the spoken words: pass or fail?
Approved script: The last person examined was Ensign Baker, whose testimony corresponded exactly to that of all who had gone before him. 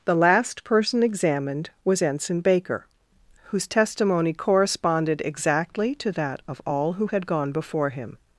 pass